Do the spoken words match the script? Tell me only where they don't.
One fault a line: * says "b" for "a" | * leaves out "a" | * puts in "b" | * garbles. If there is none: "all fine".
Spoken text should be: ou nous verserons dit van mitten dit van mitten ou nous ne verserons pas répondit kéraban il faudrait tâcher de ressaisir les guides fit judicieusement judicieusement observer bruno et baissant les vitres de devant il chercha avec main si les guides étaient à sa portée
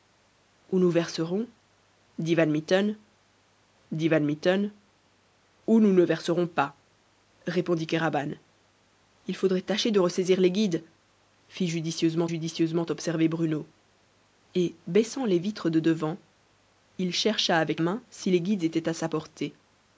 all fine